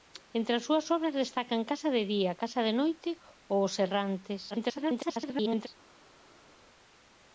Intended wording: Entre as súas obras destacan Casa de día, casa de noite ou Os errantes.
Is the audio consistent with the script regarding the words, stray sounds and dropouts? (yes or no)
no